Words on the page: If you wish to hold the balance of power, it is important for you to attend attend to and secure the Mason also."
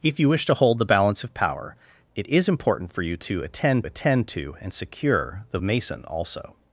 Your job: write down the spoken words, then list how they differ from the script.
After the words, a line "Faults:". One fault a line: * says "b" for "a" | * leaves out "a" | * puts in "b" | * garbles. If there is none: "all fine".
If you wish to hold the balance of power, it is important for you to attend attend to and secure the Mason also."
Faults:
all fine